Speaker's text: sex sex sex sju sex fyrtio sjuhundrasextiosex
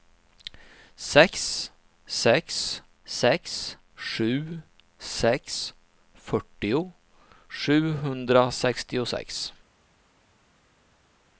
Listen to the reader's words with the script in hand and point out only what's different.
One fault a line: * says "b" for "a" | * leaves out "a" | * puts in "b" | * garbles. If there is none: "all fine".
all fine